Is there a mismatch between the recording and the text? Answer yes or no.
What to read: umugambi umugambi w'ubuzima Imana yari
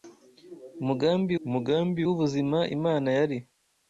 no